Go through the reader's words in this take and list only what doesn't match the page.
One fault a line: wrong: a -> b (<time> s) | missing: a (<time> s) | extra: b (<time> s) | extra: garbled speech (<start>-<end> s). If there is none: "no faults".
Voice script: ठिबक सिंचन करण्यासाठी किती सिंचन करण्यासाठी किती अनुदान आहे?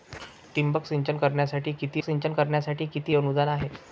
no faults